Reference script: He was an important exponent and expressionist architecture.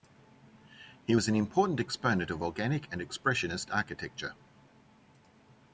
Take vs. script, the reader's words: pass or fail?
fail